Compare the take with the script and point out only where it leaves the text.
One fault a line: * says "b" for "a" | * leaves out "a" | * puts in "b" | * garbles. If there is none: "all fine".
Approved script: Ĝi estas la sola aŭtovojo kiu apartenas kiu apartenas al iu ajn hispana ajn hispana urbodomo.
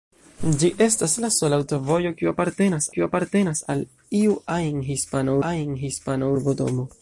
all fine